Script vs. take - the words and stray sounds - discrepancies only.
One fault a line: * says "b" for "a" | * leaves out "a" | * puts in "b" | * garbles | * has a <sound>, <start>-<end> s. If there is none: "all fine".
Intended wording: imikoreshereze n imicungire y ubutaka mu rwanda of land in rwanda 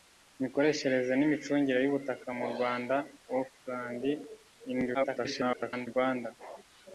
* garbles